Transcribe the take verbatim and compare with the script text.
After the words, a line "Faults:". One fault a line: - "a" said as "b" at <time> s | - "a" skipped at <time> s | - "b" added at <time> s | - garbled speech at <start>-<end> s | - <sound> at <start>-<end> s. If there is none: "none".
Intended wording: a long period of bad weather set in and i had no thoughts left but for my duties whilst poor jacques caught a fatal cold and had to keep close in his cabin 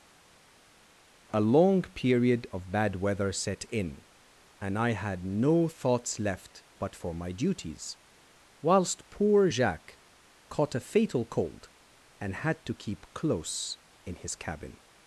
a long period of bad weather set in and i had no thoughts left but for my duties whilst poor jacques caught a fatal cold and had to keep close in his cabin
Faults:
none